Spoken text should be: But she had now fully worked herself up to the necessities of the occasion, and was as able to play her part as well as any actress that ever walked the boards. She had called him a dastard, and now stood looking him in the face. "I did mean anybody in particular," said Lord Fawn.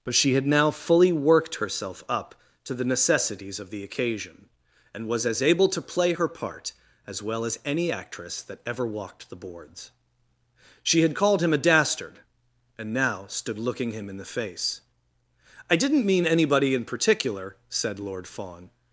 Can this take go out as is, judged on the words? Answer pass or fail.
fail